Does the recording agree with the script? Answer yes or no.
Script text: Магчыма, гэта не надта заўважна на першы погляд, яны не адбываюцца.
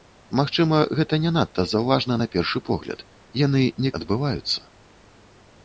yes